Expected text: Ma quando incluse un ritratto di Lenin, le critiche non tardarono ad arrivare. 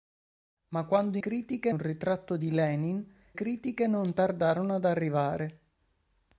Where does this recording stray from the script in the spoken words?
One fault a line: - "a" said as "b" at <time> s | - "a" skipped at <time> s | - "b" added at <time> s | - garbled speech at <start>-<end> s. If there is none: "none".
- "incluse" said as "critiche" at 1.2 s
- "le" skipped at 3.0 s